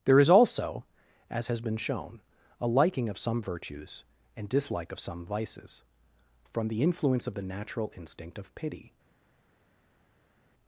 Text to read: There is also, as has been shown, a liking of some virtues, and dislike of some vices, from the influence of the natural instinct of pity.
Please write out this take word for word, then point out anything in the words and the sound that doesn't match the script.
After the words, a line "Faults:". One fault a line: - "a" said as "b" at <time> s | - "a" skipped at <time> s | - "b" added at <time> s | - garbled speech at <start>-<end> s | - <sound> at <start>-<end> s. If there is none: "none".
There is also, as has been shown, a liking of some virtues, and dislike of some vices, from the influence of the natural instinct of pity.
Faults:
none